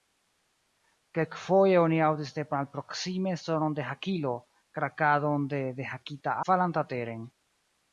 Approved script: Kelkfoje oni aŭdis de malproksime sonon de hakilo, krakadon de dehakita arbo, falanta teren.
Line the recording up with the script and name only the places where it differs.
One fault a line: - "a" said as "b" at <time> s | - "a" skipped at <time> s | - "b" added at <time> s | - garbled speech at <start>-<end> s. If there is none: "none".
- "arbo" skipped at 6.4 s